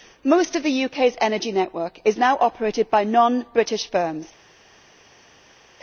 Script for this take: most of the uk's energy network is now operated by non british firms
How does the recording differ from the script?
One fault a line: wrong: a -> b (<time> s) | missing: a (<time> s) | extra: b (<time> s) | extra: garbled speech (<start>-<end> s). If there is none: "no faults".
no faults